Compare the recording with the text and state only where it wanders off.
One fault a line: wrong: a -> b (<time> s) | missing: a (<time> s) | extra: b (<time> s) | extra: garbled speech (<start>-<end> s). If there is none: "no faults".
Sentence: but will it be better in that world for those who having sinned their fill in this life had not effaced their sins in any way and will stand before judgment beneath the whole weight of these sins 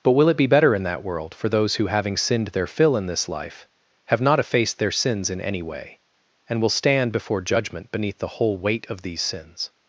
wrong: had -> have (4.1 s)